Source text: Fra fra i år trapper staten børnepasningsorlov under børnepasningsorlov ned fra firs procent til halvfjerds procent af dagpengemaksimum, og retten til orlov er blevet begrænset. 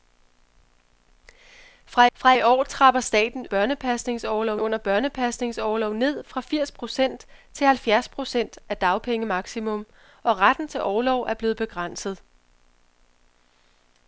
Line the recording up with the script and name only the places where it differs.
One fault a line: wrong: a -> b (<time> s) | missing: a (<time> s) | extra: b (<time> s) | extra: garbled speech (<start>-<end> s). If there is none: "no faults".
no faults